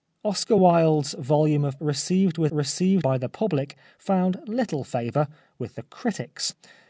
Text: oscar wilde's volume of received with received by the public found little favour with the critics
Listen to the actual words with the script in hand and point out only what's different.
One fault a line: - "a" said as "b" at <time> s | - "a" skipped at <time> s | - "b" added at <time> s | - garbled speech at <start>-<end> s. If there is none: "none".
none